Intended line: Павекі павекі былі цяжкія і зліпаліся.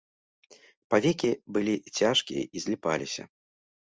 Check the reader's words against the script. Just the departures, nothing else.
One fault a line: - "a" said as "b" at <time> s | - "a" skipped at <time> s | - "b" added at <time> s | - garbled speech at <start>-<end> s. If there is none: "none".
- "павекі" skipped at 1.3 s